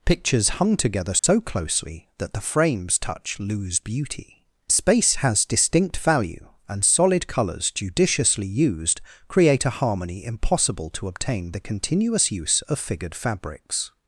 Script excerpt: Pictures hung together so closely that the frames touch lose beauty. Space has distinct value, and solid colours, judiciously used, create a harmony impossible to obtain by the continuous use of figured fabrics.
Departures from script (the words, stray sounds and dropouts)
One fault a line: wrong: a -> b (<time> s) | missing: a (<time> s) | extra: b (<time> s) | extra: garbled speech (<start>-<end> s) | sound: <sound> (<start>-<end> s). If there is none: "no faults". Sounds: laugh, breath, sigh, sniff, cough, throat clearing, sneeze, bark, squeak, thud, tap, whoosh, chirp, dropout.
sound: dropout (1.2-1.2 s)
missing: by (11.5 s)